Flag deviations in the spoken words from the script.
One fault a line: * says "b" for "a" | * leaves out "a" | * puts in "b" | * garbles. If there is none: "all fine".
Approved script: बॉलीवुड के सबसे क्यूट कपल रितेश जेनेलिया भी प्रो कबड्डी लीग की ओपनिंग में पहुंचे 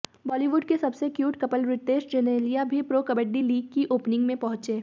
all fine